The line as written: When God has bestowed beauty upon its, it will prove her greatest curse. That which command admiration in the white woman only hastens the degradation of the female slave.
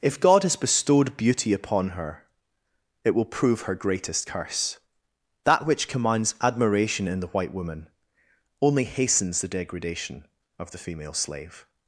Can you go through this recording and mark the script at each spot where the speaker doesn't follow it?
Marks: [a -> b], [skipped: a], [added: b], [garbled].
[When -> If] God has bestowed beauty upon [its, -> her] it will prove her greatest curse. That which [command -> commands] admiration in the white woman only hastens the degradation of the female slave.